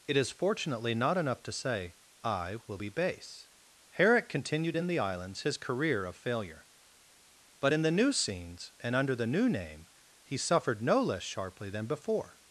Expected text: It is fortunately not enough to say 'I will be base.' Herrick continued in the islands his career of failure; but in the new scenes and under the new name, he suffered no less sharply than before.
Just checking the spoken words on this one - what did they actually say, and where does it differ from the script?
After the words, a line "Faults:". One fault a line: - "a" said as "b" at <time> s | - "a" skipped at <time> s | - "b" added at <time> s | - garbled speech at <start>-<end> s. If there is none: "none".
It is fortunately not enough to say 'I will be base.' Herrick continued in the islands his career of failure; but in the new scenes and under the new name, he suffered no less sharply than before.
Faults:
none